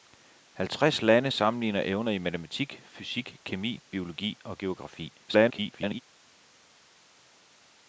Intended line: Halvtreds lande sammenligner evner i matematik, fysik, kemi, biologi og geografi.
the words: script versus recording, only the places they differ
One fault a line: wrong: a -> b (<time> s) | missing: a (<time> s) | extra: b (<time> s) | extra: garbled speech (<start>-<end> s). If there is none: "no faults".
extra: garbled speech (5.3-6.0 s)